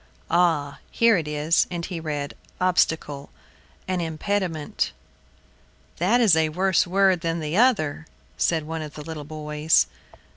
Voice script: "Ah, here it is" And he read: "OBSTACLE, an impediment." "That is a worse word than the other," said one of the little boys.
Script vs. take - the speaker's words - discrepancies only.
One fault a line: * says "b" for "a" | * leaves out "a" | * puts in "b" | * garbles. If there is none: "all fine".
all fine